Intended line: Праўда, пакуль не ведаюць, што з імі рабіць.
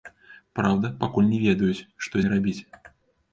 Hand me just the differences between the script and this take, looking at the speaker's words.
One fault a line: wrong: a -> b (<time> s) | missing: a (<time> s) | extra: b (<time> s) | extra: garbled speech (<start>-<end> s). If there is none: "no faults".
missing: з (2.1 s)